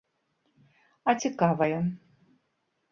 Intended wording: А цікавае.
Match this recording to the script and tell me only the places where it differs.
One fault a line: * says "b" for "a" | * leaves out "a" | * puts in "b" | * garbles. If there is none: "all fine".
all fine